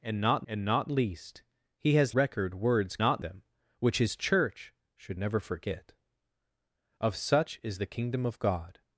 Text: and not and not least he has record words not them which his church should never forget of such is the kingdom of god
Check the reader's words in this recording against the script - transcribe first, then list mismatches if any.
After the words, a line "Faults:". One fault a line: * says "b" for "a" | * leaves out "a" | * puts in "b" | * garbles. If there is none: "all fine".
and not and not least he has record words not them which his church should never forget of such is the kingdom of god
Faults:
all fine